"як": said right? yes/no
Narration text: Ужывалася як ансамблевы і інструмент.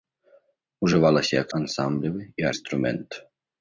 yes